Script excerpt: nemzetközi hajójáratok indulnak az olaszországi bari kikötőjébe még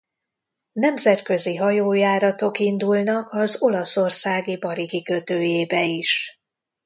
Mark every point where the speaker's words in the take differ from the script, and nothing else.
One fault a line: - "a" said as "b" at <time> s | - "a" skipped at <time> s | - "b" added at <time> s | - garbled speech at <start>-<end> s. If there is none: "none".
- "még" said as "is" at 5.8 s